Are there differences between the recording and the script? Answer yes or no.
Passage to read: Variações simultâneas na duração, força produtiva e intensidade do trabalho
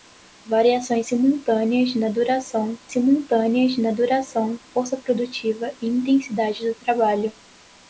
yes